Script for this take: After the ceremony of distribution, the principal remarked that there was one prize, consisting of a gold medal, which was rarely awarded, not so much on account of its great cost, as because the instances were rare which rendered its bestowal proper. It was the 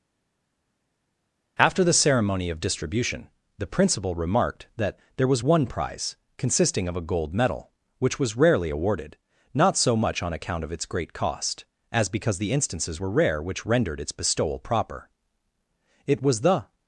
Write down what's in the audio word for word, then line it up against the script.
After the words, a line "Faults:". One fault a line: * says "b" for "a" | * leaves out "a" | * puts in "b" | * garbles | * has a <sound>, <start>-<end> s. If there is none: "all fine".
After the ceremony of distribution, the principal remarked that there was one prize, consisting of a gold medal, which was rarely awarded, not so much on account of its great cost, as because the instances were rare which rendered its bestowal proper. It was the
Faults:
all fine